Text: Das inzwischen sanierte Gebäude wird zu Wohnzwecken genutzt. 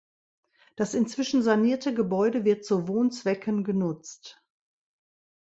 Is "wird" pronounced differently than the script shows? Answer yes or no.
no